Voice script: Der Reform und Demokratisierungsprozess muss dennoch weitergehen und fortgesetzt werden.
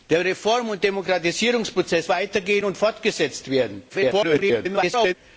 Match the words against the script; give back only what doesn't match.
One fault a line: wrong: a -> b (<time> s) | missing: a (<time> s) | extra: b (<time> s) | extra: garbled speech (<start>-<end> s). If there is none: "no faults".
missing: muss dennoch (2.1 s)
extra: garbled speech (3.9-5.1 s)